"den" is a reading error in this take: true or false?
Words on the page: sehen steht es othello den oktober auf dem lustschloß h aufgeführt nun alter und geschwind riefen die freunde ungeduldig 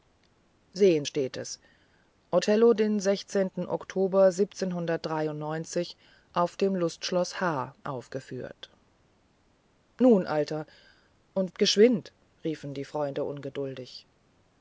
false